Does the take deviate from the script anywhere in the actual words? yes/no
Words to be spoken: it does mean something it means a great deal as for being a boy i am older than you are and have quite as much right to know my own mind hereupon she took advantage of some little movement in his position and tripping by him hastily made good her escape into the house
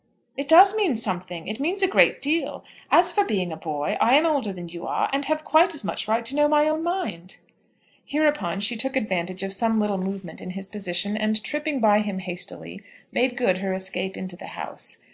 no